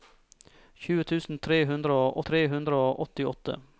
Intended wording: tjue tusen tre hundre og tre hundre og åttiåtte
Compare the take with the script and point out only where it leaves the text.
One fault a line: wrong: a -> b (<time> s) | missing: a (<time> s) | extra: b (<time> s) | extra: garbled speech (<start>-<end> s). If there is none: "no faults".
no faults